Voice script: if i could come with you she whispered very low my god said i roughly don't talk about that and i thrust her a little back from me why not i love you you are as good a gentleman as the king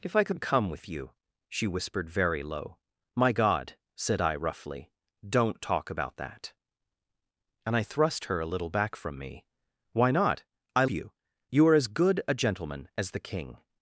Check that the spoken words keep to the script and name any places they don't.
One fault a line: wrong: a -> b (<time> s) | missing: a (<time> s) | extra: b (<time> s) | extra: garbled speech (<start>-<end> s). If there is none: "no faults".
missing: love (10.8 s)